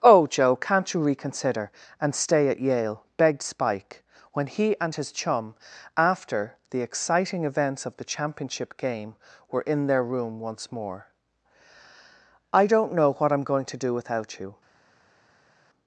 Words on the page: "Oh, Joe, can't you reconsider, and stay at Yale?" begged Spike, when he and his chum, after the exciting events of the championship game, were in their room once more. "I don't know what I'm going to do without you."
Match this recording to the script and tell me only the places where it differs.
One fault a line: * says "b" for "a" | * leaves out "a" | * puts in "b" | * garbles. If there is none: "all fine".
all fine